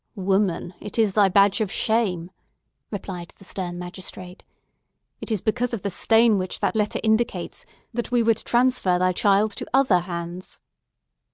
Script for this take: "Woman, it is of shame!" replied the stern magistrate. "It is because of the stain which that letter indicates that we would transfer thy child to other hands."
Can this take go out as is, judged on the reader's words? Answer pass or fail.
fail